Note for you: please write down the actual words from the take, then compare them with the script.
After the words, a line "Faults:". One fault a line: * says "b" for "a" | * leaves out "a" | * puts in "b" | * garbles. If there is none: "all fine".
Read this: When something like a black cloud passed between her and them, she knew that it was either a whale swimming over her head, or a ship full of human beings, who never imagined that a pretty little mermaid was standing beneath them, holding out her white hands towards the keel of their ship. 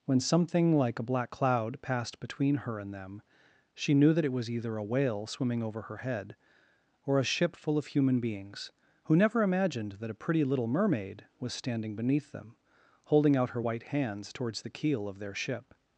When something like a black cloud passed between her and them, she knew that it was either a whale swimming over her head, or a ship full of human beings, who never imagined that a pretty little mermaid was standing beneath them, holding out her white hands towards the keel of their ship.
Faults:
all fine